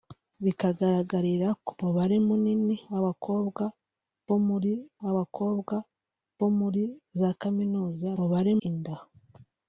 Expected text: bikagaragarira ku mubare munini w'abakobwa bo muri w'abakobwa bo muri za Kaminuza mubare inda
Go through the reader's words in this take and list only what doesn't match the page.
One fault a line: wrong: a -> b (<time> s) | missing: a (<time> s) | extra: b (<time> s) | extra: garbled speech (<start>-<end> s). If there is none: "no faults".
no faults